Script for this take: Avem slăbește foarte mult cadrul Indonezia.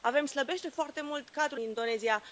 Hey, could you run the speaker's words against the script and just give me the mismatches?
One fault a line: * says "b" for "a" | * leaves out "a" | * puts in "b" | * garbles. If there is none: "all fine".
all fine